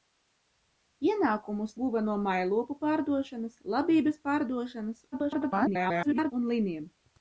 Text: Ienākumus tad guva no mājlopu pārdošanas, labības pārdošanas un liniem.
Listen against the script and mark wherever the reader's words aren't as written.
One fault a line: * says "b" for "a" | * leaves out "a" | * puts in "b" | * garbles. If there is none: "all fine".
* leaves out "tad"
* garbles